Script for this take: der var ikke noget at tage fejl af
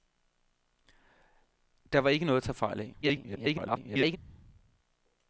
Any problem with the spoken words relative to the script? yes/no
yes